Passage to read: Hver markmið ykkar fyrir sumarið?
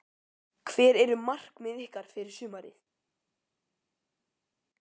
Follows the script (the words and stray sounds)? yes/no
no